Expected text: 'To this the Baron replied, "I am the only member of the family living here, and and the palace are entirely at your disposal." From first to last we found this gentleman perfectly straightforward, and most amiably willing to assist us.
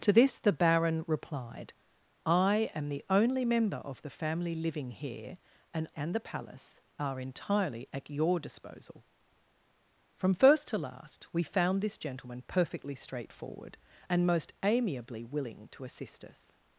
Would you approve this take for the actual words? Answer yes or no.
yes